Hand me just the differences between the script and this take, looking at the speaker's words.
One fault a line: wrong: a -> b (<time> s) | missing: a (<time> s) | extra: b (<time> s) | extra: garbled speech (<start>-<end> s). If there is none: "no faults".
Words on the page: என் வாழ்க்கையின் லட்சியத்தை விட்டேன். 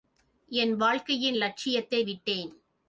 no faults